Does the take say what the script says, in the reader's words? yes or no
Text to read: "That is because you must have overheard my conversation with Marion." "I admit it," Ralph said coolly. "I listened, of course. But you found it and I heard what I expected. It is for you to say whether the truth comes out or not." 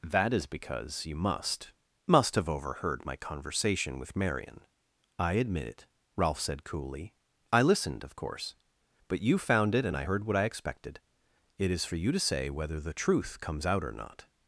no